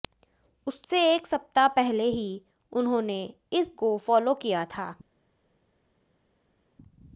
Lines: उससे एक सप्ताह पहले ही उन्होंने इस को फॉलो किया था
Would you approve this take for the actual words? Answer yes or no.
yes